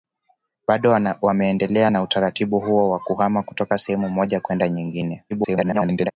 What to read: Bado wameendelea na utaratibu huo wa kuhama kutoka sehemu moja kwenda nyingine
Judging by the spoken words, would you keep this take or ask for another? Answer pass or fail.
fail